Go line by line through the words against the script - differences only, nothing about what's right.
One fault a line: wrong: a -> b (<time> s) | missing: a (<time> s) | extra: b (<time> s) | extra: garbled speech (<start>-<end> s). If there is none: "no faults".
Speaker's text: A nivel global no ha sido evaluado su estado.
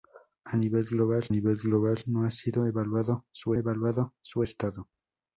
extra: nivel global (1.3 s)
extra: evaluado su (3.6 s)